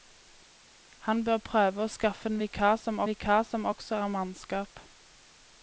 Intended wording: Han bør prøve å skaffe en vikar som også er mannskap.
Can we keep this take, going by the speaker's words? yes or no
no